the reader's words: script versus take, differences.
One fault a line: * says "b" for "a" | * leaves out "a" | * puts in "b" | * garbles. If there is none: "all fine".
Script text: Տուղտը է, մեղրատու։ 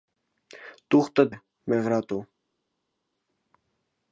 all fine